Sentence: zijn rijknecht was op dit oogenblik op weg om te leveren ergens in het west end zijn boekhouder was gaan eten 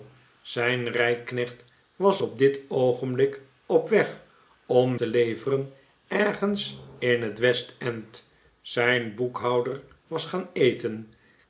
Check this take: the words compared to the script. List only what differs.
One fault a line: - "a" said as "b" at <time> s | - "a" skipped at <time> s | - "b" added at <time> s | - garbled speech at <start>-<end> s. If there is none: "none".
none